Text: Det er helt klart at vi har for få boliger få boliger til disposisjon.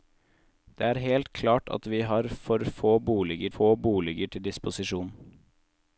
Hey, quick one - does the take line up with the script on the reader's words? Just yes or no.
yes